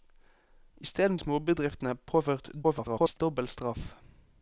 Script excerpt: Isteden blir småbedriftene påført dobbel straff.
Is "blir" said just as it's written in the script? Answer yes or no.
no